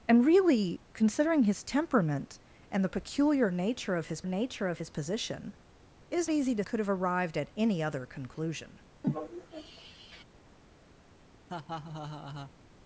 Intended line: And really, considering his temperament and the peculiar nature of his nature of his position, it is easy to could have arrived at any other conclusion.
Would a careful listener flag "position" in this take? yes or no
no